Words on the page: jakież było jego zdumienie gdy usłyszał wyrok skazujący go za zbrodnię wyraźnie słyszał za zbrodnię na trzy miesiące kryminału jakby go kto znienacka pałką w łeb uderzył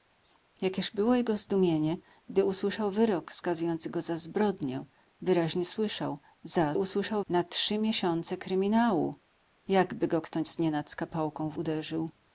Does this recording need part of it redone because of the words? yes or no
yes